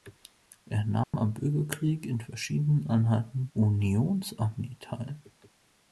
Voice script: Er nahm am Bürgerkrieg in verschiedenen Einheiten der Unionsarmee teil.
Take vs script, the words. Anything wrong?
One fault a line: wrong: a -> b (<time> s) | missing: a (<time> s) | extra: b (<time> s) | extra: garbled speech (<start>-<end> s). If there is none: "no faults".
missing: der (3.5 s)